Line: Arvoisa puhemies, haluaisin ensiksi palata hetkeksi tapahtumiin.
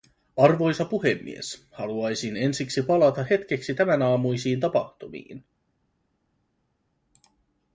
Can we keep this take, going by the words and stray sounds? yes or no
no